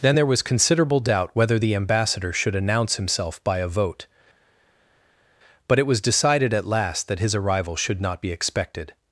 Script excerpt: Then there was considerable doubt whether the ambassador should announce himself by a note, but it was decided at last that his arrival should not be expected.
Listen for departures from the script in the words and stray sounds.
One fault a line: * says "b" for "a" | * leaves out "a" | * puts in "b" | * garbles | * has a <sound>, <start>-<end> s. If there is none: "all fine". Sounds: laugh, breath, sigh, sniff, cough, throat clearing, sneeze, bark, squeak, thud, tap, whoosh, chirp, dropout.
* says "vote" for "note"